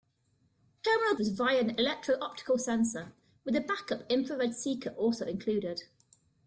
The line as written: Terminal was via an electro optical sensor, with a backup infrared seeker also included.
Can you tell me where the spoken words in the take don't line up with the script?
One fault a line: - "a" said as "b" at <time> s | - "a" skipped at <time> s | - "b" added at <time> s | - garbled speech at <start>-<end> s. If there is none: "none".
none